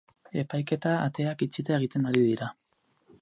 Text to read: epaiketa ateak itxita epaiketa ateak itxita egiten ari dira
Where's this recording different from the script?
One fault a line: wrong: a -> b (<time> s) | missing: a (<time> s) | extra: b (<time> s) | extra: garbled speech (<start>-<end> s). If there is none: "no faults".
missing: epaiketa ateak itxita (1.8 s)